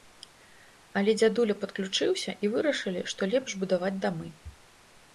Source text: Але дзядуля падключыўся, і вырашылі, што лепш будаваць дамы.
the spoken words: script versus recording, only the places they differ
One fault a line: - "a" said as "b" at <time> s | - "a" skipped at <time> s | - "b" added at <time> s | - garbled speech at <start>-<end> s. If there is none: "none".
none